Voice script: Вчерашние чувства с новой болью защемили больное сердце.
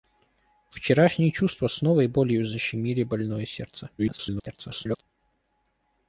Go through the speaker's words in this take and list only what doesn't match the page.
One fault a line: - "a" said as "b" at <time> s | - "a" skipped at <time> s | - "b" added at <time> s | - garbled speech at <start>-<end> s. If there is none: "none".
- garbled speech at 4.0-5.0 s